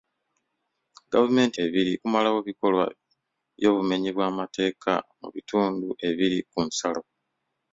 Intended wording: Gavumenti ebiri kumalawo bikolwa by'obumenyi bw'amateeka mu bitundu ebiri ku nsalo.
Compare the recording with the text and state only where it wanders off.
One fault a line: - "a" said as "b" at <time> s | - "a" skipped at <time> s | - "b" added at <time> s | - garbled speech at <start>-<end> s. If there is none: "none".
none